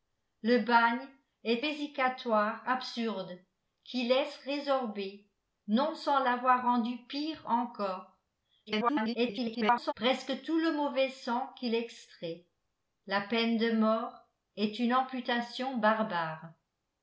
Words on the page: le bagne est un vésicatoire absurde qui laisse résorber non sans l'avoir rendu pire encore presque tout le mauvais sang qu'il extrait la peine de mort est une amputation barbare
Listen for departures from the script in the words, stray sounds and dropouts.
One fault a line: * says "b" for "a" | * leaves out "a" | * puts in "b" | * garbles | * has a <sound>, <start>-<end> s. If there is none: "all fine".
* leaves out "un"
* garbles